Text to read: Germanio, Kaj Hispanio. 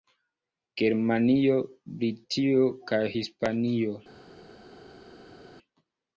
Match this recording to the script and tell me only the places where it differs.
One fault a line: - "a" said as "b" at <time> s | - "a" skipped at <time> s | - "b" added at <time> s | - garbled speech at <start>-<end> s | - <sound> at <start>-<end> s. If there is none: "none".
- "Britio" added at 2.0 s